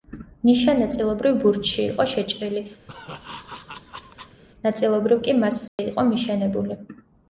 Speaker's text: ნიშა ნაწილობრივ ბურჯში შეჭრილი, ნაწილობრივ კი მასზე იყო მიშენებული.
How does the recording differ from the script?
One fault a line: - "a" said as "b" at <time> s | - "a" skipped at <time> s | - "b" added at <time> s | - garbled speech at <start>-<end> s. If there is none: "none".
- "იყო" added at 1.8 s